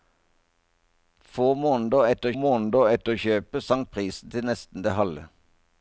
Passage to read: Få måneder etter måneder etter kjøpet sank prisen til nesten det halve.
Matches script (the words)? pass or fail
pass